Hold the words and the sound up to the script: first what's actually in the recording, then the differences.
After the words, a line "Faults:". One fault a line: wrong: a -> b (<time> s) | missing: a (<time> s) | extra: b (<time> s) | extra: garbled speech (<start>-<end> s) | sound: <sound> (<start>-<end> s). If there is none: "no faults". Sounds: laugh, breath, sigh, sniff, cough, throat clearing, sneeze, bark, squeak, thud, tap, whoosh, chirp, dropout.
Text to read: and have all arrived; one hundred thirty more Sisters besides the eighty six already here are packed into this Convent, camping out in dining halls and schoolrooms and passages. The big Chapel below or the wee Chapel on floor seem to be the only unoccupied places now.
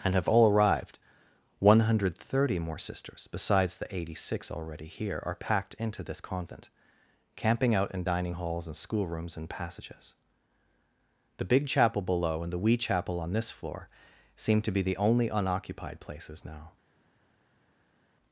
and have all arrived; one hundred thirty more Sisters besides the eighty six already here are packed into this Convent, camping out in dining halls and schoolrooms and passages. The big Chapel below and the wee Chapel on this floor seem to be the only unoccupied places now.
Faults:
wrong: or -> and (12.4 s)
extra: this (13.3 s)